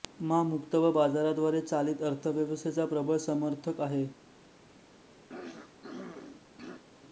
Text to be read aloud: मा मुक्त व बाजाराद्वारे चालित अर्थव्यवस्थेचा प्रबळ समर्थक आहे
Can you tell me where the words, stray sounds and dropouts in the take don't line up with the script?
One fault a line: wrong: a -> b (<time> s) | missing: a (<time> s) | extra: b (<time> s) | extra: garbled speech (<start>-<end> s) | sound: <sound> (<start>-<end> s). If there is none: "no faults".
sound: throat clearing (5.3-6.8 s)